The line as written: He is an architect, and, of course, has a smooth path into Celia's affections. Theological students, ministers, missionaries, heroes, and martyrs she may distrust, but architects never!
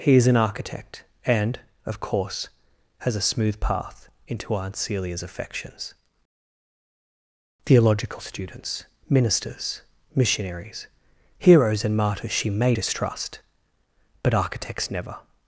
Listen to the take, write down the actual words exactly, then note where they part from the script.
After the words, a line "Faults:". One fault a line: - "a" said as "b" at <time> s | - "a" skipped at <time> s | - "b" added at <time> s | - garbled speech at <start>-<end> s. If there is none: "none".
He is an architect, and, of course, has a smooth path into Aunt Celia's affections. Theological students, ministers, missionaries, heroes, and martyrs she may distrust, but architects never!
Faults:
- "Aunt" added at 4.5 s